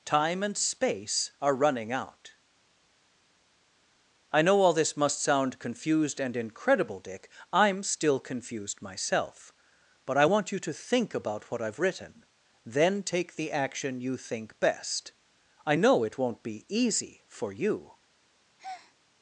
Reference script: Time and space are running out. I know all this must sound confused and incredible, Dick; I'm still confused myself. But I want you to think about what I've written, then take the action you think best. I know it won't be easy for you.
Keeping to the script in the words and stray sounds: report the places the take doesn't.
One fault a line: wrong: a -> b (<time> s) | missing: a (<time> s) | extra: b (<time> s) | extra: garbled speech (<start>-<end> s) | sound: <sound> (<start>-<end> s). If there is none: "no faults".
sound: breath (18.6-18.9 s)